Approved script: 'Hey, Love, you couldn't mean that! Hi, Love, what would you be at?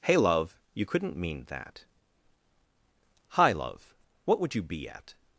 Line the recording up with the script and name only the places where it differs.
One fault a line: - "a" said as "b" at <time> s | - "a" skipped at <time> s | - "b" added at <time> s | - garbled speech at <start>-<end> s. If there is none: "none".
none